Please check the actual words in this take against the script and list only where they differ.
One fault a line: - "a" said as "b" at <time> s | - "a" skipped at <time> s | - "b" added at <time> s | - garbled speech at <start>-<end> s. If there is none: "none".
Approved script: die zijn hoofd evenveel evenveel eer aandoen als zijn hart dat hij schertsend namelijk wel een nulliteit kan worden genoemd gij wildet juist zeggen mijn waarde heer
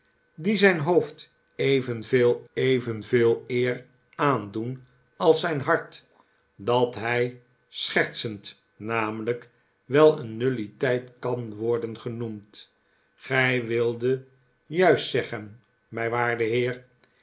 none